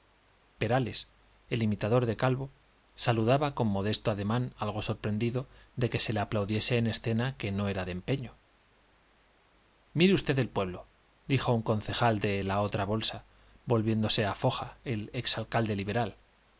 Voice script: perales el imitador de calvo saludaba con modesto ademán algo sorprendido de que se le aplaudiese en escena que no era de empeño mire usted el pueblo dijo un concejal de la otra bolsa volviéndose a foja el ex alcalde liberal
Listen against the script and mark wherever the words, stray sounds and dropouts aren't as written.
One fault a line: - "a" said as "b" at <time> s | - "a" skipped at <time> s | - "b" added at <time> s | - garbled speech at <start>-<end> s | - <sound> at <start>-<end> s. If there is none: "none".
none